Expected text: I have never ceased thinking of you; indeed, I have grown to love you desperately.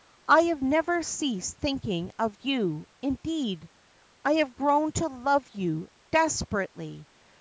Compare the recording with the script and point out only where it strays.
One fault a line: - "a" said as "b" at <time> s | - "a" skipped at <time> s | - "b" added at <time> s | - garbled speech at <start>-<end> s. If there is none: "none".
none